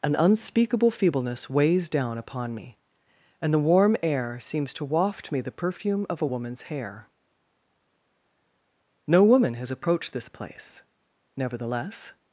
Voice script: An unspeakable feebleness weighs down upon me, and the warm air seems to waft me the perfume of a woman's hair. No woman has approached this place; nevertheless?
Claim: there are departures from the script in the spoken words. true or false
false